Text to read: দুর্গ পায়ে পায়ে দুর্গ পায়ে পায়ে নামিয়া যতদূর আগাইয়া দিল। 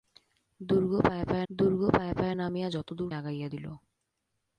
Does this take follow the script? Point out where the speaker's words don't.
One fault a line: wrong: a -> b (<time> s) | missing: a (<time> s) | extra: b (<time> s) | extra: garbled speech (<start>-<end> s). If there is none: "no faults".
no faults